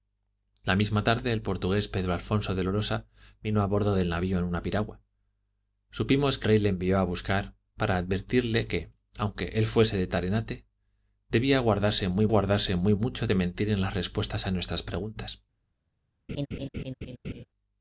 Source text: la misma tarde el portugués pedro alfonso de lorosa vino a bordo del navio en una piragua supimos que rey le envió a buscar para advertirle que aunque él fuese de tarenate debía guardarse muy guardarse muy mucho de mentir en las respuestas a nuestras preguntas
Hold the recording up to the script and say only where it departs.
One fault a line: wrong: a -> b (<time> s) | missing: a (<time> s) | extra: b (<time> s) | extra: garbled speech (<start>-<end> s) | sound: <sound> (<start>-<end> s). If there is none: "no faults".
sound: laugh (16.3-17.4 s)